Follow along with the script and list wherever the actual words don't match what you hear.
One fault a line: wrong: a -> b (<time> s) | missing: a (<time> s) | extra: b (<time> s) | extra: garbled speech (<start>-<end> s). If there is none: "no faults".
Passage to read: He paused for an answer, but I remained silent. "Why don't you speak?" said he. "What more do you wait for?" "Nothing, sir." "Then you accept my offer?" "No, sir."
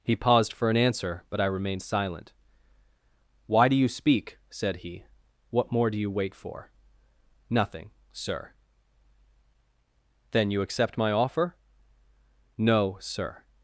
wrong: don't -> do (3.7 s)